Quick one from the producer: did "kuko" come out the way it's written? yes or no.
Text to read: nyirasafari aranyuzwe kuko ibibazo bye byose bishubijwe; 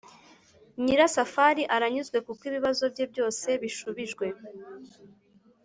yes